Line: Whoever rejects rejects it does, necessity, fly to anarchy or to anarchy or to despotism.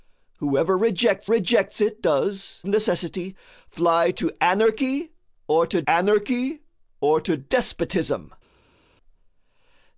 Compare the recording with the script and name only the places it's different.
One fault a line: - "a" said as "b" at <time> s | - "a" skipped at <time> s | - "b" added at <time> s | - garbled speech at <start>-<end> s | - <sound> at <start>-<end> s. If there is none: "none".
none